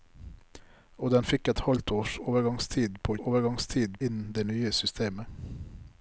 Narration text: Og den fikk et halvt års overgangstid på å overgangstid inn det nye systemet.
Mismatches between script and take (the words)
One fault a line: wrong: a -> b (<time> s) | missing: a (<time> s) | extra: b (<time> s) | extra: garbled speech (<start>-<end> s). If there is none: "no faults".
no faults